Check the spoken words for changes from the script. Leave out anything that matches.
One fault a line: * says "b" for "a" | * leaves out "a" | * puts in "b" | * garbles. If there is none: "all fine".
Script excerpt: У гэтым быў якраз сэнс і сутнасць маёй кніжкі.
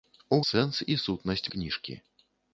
* leaves out "гэтым быў якраз"
* leaves out "маёй"